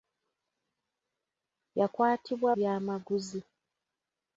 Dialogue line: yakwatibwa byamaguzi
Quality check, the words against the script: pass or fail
pass